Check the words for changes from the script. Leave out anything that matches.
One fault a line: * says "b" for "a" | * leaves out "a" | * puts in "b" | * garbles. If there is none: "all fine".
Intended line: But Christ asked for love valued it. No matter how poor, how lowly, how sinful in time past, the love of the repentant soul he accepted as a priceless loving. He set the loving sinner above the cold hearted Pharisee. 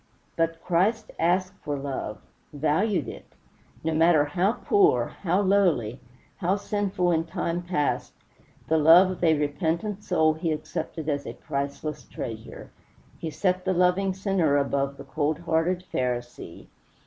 * says "a" for "the"
* says "treasure" for "loving"